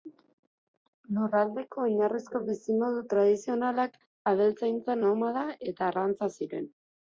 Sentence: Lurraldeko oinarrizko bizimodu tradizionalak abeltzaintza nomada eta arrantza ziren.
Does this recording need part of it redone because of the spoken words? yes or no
no